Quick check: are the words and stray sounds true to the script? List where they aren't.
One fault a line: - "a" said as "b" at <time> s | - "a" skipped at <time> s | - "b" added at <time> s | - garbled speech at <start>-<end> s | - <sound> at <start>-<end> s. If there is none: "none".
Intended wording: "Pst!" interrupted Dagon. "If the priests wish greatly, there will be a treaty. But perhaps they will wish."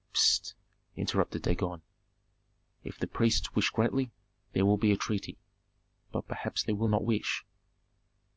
- "not" added at 6.9 s